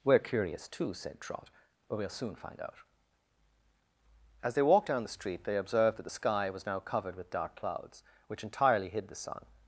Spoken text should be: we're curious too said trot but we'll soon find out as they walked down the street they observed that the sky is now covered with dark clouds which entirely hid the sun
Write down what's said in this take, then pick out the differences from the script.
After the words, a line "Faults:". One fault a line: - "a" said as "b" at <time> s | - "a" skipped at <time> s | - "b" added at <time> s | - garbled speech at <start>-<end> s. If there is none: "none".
we're curious too said trot but we'll soon find out as they walked down the street they observed that the sky was now covered with dark clouds which entirely hid the sun
Faults:
- "is" said as "was" at 6.5 s